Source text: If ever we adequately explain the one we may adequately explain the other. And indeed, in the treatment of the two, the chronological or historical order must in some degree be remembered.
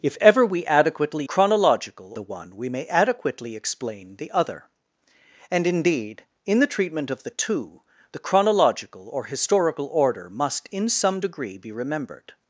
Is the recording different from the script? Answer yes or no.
yes